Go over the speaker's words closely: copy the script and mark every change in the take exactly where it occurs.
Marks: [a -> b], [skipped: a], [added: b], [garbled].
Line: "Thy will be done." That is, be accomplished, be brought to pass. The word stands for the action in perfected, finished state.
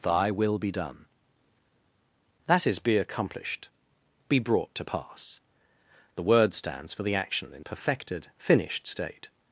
"Thy will be done." That is, be accomplished, be brought to pass. The word stands for the action in perfected, finished state.